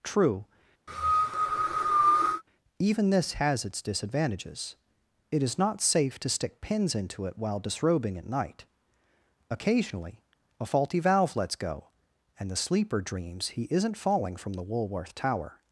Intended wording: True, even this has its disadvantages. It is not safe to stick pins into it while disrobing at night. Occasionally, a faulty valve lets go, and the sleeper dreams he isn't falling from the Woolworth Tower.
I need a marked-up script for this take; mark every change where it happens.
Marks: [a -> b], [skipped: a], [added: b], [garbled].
True, even this has its disadvantages. It is not safe to stick pins into it while disrobing at night. Occasionally, a faulty valve lets go, and the sleeper dreams he isn't falling from the Woolworth Tower.